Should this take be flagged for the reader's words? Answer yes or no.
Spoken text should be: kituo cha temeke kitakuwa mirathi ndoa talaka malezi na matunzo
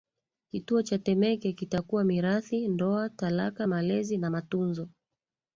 no